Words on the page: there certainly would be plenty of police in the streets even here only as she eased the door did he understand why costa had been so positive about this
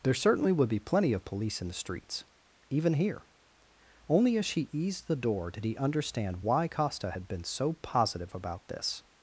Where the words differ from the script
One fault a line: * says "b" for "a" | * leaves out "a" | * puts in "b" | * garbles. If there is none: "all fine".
all fine